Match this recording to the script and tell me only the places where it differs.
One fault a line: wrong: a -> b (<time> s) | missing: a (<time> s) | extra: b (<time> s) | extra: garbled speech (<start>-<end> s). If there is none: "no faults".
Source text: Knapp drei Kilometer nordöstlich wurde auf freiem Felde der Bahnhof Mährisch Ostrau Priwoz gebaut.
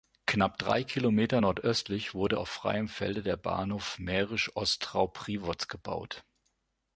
no faults